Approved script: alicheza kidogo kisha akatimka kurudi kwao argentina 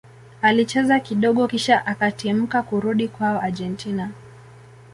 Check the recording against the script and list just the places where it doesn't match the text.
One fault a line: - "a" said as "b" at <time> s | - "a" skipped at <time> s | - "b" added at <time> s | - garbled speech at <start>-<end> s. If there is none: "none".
none